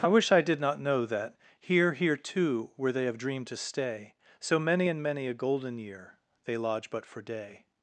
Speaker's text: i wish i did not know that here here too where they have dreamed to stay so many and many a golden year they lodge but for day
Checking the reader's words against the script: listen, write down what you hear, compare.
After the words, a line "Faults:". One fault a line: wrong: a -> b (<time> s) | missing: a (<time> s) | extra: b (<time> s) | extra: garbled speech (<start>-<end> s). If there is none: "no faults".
i wish i did not know that here here too where they have dreamed to stay so many and many a golden year they lodge but for day
Faults:
no faults